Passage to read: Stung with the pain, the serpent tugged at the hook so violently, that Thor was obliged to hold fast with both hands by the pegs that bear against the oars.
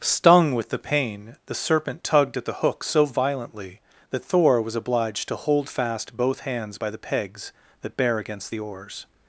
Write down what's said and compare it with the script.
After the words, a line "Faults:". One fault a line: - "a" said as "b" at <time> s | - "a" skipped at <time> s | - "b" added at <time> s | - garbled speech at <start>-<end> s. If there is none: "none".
Stung with the pain, the serpent tugged at the hook so violently, that Thor was obliged to hold fast both hands by the pegs that bear against the oars.
Faults:
- "with" skipped at 6.2 s